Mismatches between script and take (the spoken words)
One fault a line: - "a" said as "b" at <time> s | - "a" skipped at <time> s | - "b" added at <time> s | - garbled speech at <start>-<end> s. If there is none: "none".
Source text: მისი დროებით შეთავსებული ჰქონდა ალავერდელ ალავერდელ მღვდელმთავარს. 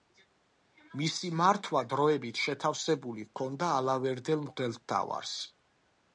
- "მართვა" added at 1.4 s
- "ალავერდელ" skipped at 4.5 s